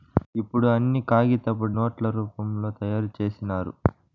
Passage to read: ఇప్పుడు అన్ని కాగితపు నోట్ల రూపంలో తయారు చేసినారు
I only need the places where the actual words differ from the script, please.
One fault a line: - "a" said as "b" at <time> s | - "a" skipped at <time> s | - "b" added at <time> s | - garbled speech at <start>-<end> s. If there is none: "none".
none